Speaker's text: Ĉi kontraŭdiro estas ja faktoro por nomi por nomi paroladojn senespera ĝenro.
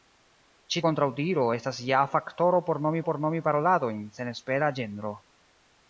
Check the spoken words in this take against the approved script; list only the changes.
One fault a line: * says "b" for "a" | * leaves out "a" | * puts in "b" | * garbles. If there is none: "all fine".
all fine